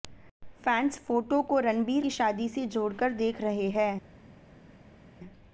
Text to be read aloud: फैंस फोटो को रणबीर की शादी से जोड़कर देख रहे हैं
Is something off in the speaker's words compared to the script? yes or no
no